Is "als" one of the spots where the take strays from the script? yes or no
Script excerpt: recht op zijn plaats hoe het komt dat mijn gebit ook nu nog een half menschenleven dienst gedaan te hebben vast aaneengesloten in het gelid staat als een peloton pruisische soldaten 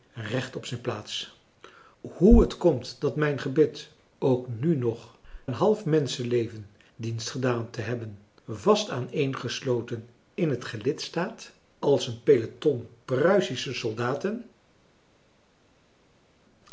no